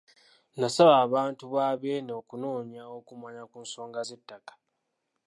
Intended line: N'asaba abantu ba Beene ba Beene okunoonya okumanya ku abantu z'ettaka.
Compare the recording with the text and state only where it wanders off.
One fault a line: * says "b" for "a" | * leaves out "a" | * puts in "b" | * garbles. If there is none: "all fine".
* leaves out "ba Beene"
* says "nsonga" for "abantu"